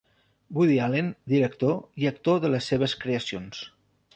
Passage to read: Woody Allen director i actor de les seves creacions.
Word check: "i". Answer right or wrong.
right